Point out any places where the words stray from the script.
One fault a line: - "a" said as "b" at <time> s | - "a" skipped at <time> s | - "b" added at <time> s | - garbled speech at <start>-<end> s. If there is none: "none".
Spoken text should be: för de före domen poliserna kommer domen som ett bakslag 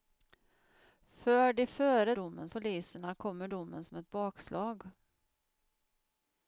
none